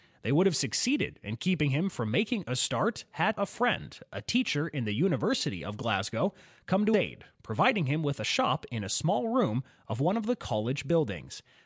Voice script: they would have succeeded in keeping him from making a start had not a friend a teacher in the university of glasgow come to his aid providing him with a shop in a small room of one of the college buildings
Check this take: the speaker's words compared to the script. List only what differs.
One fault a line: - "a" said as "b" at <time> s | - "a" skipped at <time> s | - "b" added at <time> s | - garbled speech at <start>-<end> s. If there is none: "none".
- "not" skipped at 3.4 s
- "his" skipped at 7.0 s